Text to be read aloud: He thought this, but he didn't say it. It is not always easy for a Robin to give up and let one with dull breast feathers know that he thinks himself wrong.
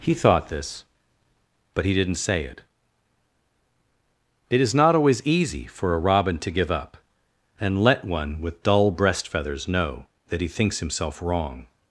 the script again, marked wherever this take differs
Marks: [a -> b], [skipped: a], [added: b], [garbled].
He thought this, but he didn't say it. It is not always easy for a Robin to give up and let one with dull breast feathers know that he thinks himself wrong.